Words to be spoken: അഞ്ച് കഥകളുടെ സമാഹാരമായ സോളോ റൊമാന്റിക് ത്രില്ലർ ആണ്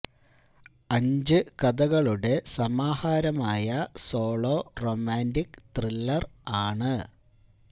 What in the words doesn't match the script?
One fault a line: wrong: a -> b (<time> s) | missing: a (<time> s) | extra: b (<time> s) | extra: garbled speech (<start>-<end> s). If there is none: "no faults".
no faults